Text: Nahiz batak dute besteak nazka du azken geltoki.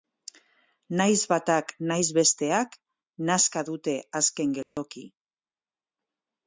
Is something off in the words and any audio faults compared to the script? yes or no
yes